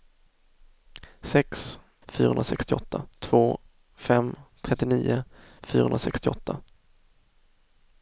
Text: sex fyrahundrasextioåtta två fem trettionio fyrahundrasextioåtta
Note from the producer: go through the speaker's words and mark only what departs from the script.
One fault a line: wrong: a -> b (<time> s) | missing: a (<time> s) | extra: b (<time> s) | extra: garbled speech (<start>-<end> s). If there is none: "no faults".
no faults